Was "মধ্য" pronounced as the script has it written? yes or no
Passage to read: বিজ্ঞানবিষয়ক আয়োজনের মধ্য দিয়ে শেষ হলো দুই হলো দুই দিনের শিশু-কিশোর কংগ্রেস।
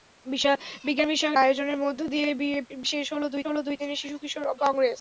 yes